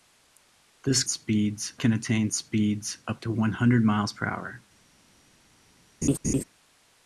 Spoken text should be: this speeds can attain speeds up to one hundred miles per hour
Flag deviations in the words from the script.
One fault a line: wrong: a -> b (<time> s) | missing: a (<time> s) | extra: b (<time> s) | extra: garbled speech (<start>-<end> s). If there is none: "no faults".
no faults